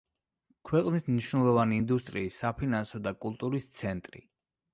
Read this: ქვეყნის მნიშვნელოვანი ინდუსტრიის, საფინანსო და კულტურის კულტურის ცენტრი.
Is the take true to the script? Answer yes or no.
no